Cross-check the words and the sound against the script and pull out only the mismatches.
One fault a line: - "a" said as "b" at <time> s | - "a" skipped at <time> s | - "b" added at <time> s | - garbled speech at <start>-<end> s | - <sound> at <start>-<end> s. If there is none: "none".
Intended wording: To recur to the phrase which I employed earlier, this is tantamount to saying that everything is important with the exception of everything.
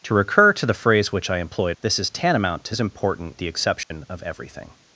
- "earlier" skipped at 1.8 s
- "saying that everything" skipped at 2.7 s
- "with" skipped at 3.4 s
- dropout at 3.8-3.9 s